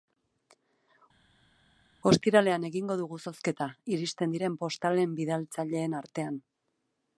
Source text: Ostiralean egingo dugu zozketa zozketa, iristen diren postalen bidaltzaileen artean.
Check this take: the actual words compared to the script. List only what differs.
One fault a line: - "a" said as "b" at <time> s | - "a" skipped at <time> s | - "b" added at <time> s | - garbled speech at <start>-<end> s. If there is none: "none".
- "zozketa" skipped at 3.7 s